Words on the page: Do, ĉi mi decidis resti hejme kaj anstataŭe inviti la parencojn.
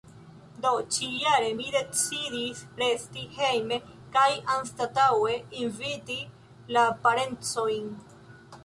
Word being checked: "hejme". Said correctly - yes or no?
yes